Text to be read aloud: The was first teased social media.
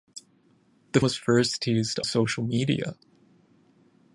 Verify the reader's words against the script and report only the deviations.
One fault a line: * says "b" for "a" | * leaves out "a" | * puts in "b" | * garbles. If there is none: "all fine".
all fine